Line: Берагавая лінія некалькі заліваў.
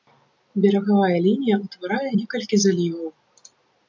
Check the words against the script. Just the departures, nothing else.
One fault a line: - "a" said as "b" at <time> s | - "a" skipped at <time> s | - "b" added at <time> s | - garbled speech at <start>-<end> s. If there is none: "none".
- "ўтварае" added at 1.6 s